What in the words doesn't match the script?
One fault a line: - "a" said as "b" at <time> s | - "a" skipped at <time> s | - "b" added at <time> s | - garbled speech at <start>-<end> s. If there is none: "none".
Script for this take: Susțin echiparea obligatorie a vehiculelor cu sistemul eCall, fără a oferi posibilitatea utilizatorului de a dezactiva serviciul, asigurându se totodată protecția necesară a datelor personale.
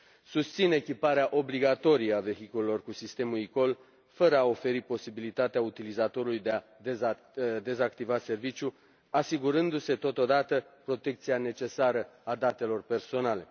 none